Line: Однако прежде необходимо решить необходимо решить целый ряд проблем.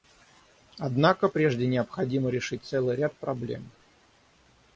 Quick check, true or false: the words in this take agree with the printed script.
false